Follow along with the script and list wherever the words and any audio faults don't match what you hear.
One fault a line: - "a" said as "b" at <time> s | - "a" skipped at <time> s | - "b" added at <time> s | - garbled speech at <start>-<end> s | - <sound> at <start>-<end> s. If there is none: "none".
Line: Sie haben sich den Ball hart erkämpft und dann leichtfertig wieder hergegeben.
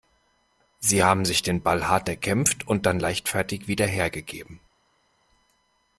none